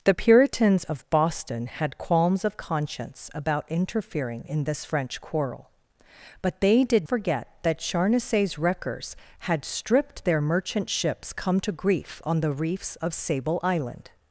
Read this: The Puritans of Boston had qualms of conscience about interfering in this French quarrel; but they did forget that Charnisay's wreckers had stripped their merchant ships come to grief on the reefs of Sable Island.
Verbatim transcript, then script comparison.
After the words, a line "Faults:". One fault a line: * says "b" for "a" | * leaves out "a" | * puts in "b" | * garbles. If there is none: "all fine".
The Puritans of Boston had qualms of conscience about interfering in this French quarrel; but they did forget that Charnisay's wreckers had stripped their merchant ships come to grief on the reefs of Sable Island.
Faults:
all fine